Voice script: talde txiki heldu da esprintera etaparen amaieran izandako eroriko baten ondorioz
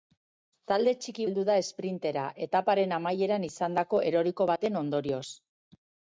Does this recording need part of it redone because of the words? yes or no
no